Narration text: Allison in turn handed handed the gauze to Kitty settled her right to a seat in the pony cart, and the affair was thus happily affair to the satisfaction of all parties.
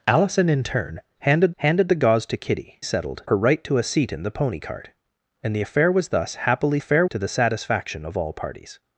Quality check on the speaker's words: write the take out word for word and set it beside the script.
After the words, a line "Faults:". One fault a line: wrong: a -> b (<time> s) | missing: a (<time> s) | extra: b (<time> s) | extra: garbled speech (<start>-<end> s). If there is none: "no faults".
Allison in turn handed handed the gauze to Kitty settled her right to a seat in the pony cart, and the affair was thus happily affair to the satisfaction of all parties.
Faults:
no faults